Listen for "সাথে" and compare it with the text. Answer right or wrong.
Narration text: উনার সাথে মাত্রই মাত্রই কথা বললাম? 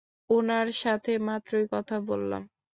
right